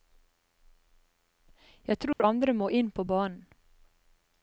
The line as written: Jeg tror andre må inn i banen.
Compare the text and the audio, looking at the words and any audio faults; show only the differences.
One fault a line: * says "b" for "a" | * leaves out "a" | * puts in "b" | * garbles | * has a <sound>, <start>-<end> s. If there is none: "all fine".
* has a dropout, 2.1-2.2 s
* says "på" for "i"